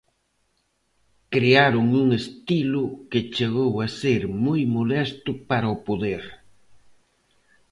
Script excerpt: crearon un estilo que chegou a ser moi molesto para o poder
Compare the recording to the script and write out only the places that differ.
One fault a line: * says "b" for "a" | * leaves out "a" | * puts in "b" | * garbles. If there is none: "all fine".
all fine